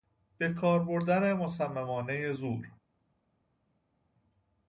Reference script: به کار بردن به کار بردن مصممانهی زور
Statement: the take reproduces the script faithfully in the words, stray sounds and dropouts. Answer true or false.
false